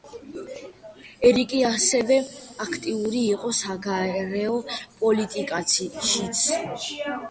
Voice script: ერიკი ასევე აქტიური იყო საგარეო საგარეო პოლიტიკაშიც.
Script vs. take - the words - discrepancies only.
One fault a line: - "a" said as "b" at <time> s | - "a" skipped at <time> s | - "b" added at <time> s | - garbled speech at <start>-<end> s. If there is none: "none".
- "საგარეო" skipped at 4.6 s